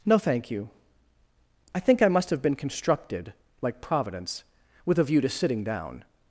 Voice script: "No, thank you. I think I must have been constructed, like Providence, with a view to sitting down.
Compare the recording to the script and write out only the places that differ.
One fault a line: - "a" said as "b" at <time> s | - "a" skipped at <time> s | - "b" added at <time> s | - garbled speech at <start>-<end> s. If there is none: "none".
none